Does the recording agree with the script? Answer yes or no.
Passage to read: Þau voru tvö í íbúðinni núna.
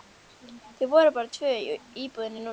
no